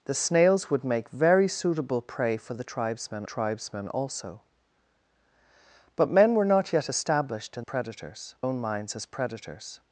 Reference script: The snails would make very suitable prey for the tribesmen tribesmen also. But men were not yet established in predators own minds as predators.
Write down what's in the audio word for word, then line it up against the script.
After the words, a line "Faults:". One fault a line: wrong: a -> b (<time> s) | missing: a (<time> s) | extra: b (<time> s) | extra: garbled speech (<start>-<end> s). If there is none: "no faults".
The snails would make very suitable prey for the tribesmen tribesmen also. But men were not yet established in predators own minds as predators.
Faults:
no faults